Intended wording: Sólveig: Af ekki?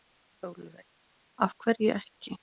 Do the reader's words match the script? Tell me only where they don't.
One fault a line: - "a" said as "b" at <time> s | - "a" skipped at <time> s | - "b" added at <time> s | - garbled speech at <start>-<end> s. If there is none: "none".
- "hverju" added at 1.6 s